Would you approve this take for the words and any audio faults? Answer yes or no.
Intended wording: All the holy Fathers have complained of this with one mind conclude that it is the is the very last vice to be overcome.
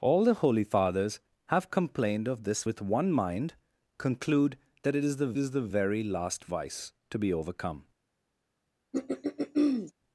no